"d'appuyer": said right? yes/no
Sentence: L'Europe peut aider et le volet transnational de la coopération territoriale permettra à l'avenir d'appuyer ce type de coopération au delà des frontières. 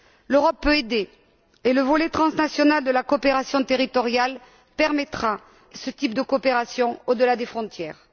no